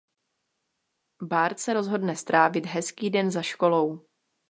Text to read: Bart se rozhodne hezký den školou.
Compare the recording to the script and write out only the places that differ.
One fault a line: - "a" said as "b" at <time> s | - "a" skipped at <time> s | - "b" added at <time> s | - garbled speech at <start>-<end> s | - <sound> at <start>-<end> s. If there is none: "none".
- "strávit" added at 2.2 s
- "za" added at 3.3 s